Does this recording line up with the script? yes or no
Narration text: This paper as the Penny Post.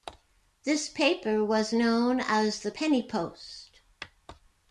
no